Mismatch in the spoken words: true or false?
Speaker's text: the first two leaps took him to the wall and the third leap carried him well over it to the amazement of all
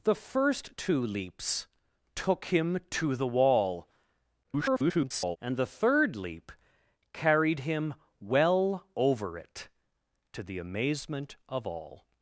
true